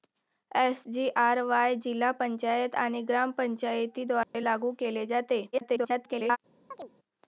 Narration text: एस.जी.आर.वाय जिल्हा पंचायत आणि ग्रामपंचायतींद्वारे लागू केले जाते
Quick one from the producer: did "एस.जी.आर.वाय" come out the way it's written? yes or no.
yes